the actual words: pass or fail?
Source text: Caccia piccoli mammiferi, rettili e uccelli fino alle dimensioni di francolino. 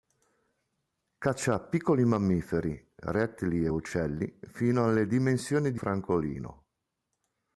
pass